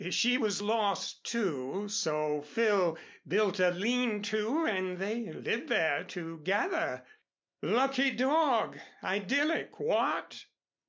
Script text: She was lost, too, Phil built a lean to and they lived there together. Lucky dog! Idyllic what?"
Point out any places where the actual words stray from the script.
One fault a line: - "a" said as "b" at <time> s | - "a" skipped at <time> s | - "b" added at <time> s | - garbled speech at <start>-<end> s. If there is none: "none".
- "so" added at 1.9 s